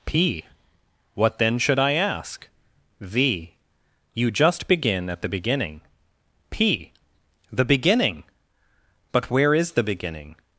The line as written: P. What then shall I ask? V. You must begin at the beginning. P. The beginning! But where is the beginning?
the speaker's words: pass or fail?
fail